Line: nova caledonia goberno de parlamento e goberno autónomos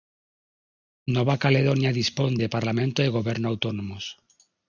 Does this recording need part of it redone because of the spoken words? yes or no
yes